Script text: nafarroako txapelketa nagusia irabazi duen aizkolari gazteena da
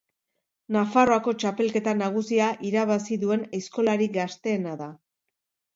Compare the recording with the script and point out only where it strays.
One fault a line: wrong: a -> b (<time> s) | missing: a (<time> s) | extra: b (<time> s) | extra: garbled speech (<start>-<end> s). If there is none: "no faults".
no faults